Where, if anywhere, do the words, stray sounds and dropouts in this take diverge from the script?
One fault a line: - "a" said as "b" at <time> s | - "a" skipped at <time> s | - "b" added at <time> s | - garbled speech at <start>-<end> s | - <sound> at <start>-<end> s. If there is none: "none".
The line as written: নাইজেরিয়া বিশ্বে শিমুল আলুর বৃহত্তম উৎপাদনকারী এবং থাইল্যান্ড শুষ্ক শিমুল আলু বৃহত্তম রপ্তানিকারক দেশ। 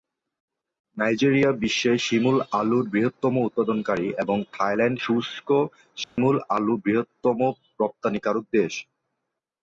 - dropout at 6.0-6.2 s